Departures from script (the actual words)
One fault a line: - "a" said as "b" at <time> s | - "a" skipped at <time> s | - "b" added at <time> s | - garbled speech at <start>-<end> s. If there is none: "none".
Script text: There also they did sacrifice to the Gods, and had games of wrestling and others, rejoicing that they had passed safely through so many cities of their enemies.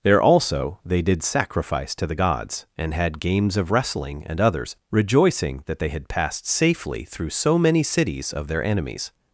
none